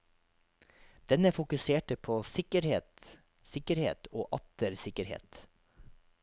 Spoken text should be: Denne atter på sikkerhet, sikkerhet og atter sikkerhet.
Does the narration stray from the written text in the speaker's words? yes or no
yes